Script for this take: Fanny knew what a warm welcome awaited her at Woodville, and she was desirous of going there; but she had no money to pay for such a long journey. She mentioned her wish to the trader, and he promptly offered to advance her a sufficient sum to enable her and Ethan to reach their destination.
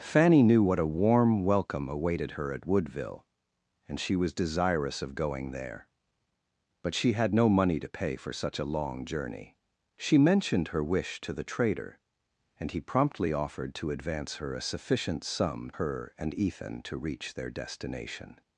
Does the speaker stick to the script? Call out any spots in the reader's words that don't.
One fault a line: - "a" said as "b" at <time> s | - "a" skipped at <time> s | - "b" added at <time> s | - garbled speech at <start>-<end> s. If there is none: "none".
- "to enable" skipped at 15.7 s